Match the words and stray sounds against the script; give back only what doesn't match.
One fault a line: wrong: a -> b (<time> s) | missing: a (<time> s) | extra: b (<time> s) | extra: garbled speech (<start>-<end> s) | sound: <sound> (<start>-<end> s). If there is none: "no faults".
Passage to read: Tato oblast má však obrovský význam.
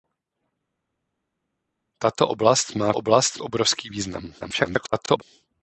wrong: však -> oblast (2.9 s)
extra: garbled speech (4.4-5.2 s)